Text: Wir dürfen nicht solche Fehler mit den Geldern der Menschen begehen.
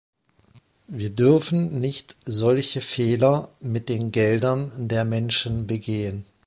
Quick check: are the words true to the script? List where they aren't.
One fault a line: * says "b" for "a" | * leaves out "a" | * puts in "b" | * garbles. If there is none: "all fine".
all fine